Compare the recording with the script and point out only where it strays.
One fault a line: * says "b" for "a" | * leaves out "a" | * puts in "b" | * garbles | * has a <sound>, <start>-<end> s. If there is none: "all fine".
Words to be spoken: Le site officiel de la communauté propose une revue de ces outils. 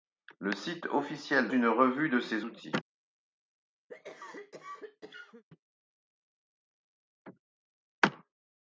* leaves out "la communauté propose"
* has a cough, 3.9-5.4 s